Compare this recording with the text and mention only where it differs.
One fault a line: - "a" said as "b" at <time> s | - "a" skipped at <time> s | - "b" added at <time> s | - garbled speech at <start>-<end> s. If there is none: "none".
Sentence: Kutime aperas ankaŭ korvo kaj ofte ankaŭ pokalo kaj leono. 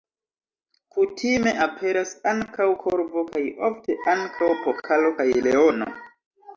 none